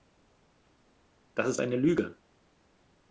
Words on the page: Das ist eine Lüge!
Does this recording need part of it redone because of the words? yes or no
no